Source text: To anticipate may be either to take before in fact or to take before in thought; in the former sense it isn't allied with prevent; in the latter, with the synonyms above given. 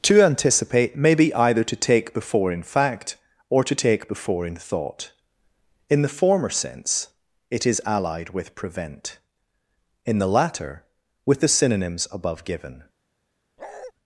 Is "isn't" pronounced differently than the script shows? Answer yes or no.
yes